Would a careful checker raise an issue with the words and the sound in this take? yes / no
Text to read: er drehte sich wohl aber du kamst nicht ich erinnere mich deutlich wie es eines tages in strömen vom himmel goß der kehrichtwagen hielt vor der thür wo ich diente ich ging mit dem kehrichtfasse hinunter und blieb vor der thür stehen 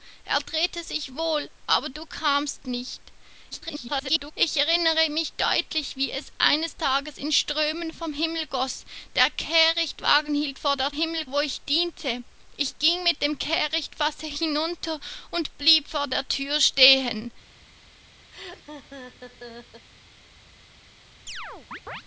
yes